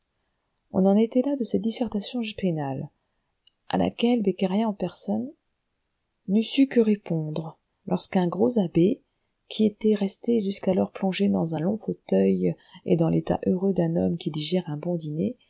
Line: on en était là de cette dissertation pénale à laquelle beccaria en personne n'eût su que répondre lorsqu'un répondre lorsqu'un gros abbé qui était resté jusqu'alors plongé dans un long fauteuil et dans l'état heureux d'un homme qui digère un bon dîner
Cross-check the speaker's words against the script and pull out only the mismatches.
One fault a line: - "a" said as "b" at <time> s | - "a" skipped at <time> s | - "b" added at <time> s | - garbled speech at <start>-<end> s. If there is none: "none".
- "répondre lorsqu'un" skipped at 8.3 s